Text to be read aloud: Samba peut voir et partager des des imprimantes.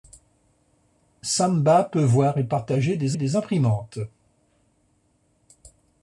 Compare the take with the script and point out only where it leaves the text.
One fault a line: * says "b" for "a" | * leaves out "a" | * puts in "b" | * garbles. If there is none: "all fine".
all fine